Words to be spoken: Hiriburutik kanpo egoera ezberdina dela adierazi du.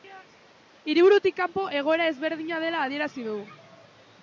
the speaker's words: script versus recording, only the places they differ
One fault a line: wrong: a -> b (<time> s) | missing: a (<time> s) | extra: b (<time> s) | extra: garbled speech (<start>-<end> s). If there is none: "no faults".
no faults